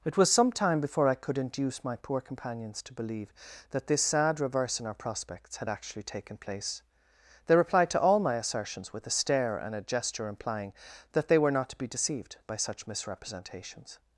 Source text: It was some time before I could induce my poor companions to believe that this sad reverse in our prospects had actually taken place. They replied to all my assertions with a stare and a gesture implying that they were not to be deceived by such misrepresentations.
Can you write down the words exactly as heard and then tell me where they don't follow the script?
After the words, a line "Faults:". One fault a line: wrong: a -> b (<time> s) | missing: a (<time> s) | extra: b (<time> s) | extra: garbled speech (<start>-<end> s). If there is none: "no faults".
It was some time before I could induce my poor companions to believe that this sad reverse in our prospects had actually taken place. They replied to all my assertions with a stare and a gesture implying that they were not to be deceived by such misrepresentations.
Faults:
no faults